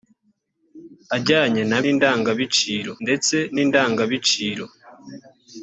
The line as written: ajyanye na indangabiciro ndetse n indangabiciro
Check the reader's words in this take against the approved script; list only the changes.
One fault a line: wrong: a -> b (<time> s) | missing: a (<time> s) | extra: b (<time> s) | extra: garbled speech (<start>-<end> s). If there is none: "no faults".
no faults